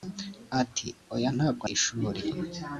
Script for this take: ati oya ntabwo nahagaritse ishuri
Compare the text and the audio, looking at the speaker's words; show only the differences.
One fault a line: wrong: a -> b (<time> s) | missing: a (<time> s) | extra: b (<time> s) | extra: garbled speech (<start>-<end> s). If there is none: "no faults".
missing: nahagaritse (1.6 s)